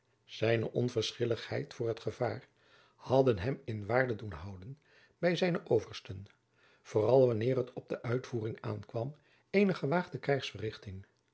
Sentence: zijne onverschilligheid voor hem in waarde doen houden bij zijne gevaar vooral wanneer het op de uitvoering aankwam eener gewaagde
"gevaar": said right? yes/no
no